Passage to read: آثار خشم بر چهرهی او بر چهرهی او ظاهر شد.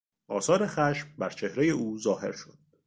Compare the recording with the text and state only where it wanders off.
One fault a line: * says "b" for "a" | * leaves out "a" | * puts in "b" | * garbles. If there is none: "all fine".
* leaves out "بر چهرهی او"